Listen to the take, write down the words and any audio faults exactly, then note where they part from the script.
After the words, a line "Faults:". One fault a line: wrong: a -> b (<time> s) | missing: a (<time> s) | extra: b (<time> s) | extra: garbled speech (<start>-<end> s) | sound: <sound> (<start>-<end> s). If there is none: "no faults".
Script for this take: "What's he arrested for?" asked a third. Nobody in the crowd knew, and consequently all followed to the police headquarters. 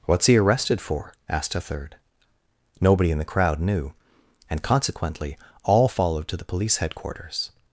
"What's he arrested for?" asked a third. Nobody in the crowd knew, and consequently all followed to the police headquarters.
Faults:
no faults